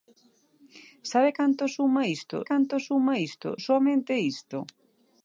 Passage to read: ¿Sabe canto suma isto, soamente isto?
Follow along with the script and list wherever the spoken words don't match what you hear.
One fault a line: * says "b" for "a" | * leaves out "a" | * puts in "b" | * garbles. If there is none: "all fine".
* puts in "canto suma isto"